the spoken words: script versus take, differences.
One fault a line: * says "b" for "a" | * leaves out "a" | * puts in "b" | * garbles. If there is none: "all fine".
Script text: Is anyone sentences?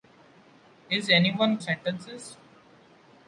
all fine